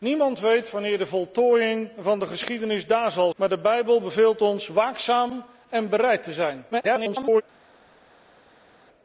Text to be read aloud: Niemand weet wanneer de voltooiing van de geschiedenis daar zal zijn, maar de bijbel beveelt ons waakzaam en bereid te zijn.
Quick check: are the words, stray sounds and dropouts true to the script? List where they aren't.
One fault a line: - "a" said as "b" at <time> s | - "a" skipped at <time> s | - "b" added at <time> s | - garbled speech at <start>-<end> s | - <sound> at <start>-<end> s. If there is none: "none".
- "zijn" skipped at 3.3 s
- garbled speech at 6.7-7.4 s